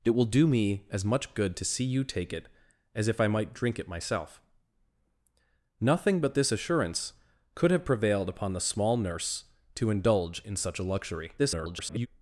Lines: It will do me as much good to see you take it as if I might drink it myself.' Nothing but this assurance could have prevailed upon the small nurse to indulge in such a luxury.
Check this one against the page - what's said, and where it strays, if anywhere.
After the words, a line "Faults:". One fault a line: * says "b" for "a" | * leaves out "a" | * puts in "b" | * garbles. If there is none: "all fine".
It will do me as much good to see you take it as if I might drink it myself.' Nothing but this assurance could have prevailed upon the small nurse to indulge in such a luxury. [garbled]
Faults:
* garbles